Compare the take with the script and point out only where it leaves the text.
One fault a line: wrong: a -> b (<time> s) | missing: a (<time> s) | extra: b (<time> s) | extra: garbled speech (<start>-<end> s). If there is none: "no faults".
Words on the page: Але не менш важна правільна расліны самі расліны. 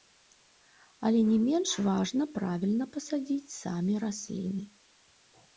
wrong: расліны -> пасадзіць (3.0 s)